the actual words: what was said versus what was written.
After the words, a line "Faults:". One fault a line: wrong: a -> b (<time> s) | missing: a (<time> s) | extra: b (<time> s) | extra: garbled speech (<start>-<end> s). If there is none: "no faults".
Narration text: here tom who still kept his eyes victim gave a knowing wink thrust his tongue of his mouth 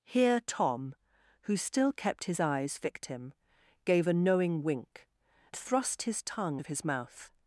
here tom who still kept his eyes victim gave a knowing wink thrust his tongue of his mouth
Faults:
no faults